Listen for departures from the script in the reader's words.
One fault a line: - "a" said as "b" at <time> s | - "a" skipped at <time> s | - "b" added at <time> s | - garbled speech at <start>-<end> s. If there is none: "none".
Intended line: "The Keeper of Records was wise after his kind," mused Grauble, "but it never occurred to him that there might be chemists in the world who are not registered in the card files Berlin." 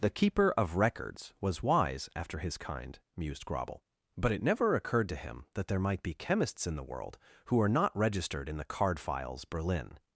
none